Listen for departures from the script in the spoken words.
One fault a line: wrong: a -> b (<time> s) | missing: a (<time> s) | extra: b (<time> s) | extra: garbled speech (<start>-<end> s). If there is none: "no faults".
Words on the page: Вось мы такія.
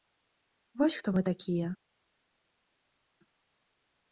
extra: хто (1.0 s)